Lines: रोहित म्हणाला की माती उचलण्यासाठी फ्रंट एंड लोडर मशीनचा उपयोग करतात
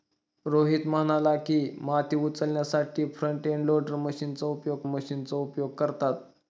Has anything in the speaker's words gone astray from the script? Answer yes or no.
yes